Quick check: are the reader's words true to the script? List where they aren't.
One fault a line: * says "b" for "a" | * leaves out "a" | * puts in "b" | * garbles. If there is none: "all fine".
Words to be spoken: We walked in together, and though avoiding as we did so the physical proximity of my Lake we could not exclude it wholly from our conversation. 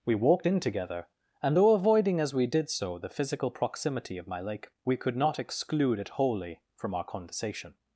all fine